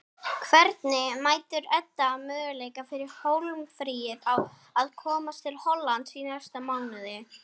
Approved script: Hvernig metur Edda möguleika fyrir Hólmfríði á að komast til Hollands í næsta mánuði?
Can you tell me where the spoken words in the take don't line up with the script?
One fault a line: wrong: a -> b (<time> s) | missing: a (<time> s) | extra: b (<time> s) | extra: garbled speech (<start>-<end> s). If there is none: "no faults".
no faults